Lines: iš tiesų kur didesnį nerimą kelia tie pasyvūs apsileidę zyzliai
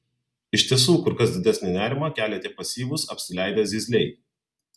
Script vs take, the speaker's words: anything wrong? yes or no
yes